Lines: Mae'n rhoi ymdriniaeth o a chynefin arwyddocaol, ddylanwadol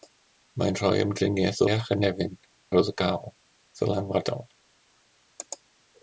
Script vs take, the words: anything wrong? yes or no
no